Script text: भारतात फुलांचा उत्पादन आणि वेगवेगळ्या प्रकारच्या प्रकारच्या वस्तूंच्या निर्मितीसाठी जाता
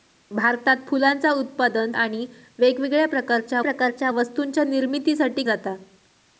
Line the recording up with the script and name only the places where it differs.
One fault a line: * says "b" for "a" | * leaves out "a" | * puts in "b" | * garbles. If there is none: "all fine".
all fine